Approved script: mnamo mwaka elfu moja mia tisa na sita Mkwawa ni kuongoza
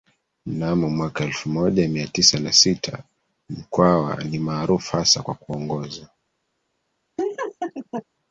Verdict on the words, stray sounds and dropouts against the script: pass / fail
fail